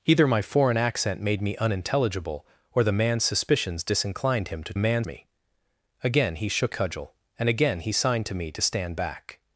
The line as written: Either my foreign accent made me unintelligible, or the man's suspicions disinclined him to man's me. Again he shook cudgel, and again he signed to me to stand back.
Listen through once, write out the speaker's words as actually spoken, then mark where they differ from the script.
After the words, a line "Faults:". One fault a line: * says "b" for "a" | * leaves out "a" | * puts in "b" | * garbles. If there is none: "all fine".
Either my foreign accent made me unintelligible, or the man's suspicions disinclined him to man's me. Again he shook cudgel, and again he signed to me to stand back.
Faults:
all fine